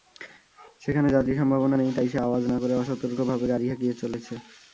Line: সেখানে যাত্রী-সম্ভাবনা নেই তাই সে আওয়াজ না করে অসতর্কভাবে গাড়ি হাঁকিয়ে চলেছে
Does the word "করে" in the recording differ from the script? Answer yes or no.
no